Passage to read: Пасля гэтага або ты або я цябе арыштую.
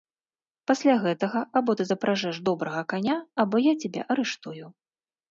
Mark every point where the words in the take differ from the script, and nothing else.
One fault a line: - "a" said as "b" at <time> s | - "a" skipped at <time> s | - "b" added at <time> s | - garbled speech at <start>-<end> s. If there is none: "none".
- "запражэш добрага каня" added at 1.9 s